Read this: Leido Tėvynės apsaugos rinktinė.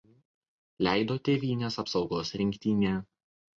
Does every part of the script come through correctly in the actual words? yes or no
yes